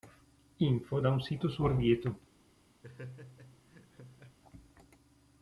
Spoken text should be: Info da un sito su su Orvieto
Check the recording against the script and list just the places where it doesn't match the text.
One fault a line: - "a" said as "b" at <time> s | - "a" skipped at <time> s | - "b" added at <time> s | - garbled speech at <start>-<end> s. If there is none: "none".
- "su" skipped at 1.6 s